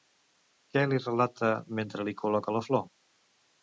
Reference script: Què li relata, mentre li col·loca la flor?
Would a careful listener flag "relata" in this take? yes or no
no